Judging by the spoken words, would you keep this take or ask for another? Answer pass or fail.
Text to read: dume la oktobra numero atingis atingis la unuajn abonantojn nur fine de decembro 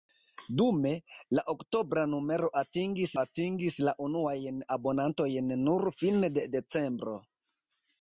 pass